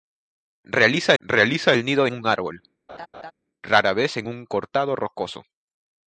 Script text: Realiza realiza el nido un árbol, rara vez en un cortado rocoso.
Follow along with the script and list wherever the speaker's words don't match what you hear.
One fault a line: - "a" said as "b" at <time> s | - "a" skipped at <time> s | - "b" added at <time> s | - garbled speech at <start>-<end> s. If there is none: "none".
none